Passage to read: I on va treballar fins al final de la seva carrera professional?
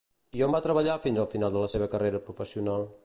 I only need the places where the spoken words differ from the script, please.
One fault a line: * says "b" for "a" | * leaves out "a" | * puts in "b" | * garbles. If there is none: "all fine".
all fine